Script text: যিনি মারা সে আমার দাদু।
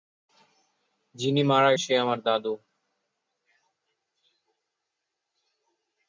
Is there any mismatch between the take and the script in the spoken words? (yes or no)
no